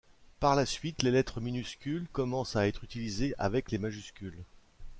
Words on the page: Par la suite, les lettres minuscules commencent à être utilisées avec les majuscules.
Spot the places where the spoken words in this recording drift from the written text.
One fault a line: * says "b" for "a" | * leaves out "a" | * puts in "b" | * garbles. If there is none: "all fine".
all fine